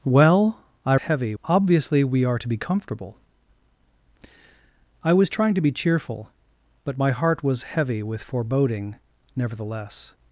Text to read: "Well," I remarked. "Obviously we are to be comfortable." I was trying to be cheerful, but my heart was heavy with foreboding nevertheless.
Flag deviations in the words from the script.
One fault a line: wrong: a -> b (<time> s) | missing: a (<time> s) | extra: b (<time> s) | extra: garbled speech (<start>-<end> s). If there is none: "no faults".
wrong: remarked -> heavy (0.9 s)